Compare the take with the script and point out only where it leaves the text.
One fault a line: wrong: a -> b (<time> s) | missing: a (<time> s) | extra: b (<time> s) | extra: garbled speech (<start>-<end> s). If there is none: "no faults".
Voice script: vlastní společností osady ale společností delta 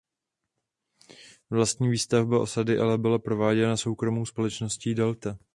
wrong: společností -> výstavba (1.9 s)
extra: byla prováděna soukromou (3.0 s)